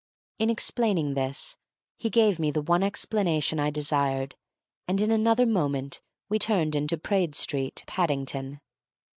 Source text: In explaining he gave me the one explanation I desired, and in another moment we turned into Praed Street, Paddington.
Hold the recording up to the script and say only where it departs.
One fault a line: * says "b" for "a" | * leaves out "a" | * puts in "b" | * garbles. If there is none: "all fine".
* puts in "this"